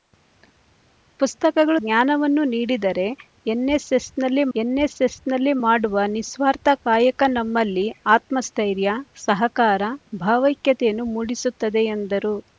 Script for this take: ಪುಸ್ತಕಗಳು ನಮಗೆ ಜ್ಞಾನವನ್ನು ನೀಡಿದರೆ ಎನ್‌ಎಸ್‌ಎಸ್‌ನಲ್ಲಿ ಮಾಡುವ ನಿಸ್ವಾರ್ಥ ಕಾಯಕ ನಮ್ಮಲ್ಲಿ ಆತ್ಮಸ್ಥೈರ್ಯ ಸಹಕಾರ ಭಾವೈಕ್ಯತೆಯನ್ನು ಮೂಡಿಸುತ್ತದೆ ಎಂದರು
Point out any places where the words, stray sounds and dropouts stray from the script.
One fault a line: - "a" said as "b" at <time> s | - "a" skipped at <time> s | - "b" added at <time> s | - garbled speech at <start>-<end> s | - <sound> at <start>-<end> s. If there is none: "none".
- "ನಮಗೆ" skipped at 1.8 s
- "ಎನ್‌ಎಸ್‌ಎಸ್‌ನಲ್ಲಿ" added at 4.5 s